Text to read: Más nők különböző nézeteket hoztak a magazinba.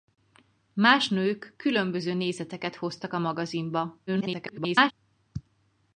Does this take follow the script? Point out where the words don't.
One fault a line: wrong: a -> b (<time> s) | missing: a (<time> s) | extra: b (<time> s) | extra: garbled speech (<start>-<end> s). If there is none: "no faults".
extra: garbled speech (4.1-4.9 s)